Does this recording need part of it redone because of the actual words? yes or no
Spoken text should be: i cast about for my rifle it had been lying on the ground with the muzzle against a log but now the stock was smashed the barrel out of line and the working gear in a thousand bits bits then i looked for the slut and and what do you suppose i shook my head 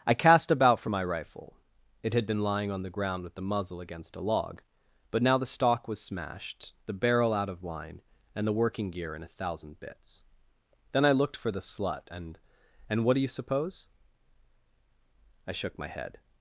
yes